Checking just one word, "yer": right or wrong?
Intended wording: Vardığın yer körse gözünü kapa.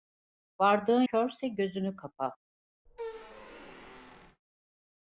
wrong